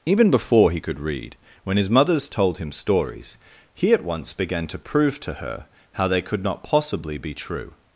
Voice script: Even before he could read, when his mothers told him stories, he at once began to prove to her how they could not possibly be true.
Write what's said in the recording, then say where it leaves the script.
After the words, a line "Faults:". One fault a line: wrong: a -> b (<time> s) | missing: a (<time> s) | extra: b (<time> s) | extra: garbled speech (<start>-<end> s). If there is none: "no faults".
Even before he could read, when his mothers told him stories, he at once began to prove to her how they could not possibly be true.
Faults:
no faults